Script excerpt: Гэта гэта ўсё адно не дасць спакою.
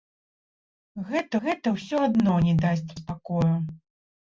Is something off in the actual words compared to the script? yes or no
no